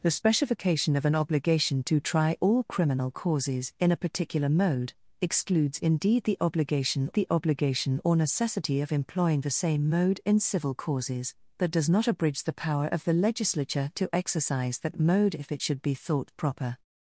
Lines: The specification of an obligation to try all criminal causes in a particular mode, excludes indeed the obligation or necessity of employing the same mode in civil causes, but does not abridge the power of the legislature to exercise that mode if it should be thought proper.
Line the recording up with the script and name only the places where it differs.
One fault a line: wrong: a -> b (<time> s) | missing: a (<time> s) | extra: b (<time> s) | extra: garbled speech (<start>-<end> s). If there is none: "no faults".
extra: the obligation (7.1 s)